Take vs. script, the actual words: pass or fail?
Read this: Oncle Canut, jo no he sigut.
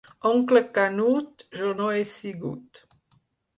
pass